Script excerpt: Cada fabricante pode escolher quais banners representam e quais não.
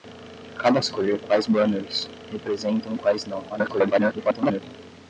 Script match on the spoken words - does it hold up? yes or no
no